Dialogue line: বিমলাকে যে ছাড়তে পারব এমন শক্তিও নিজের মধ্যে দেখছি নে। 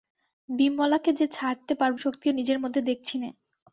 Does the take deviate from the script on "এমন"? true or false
true